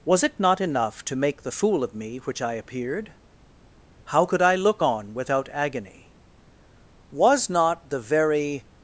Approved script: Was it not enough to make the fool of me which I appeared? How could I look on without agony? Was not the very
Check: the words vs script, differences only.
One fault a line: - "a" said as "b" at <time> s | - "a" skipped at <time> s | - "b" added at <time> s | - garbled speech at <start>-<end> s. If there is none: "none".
none